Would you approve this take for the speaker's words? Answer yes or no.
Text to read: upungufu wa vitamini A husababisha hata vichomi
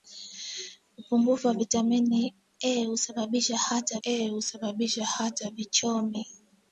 no